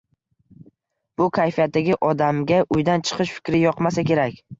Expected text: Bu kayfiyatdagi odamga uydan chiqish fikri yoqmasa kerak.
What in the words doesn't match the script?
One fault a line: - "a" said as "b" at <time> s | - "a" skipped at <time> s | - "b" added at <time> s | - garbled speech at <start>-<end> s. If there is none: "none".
none